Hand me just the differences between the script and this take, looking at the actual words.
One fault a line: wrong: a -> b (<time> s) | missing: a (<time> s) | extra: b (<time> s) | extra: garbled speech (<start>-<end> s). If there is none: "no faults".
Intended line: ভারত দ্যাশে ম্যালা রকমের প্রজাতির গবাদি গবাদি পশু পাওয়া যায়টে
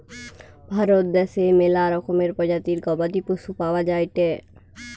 missing: গবাদি (3.2 s)